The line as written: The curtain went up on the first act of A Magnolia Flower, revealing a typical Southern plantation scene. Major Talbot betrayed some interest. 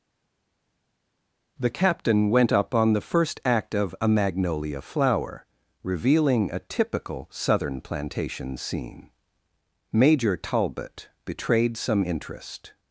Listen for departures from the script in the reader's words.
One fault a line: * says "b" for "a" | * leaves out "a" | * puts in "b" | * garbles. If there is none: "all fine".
* says "captain" for "curtain"